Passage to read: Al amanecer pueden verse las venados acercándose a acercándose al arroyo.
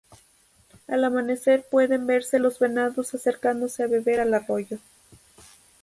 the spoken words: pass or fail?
fail